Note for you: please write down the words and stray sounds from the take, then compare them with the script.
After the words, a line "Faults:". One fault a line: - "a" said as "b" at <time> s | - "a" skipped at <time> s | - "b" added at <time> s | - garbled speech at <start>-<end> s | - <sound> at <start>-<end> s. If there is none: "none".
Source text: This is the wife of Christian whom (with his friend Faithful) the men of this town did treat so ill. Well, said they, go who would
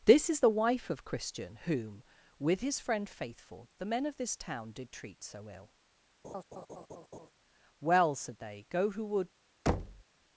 This is the wife of Christian whom (with his friend Faithful) the men of this town did treat so ill. Well, said they, go who would
Faults:
- laugh at 6.2-7.3 s
- thud at 9.7-10.0 s